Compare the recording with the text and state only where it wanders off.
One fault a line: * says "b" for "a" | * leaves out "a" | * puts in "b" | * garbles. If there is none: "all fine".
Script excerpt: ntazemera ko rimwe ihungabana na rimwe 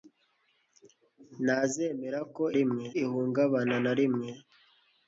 all fine